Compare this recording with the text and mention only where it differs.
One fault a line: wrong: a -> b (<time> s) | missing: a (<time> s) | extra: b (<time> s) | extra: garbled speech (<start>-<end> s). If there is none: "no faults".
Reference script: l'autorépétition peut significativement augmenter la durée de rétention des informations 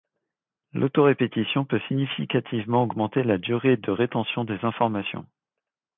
no faults